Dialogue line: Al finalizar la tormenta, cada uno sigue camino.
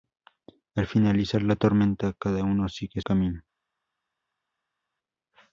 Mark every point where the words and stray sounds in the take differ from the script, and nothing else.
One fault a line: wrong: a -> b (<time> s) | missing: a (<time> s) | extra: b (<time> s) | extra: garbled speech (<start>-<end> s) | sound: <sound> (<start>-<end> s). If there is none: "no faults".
no faults